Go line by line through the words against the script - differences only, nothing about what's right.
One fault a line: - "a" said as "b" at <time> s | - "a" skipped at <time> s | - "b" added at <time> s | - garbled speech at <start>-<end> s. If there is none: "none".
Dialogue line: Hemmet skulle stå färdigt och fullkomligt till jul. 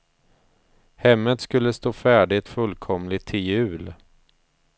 - "och" skipped at 2.5 s